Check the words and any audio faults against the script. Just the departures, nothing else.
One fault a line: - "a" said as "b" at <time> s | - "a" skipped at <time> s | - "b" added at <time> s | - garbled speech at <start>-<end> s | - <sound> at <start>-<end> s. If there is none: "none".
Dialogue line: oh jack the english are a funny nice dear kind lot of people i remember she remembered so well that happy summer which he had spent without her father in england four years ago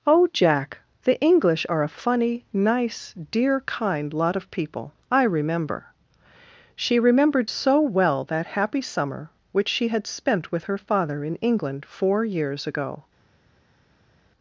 - "he" said as "she" at 9.7 s
- "without" said as "with" at 10.5 s